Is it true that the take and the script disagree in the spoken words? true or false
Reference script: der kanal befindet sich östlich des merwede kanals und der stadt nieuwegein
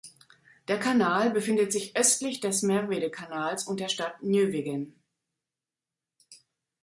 false